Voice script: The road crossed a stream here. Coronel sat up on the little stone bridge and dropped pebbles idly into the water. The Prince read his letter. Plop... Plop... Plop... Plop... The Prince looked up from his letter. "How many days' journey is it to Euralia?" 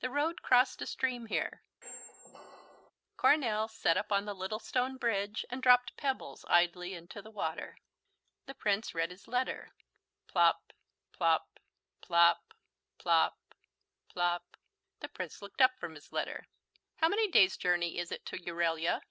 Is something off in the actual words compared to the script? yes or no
yes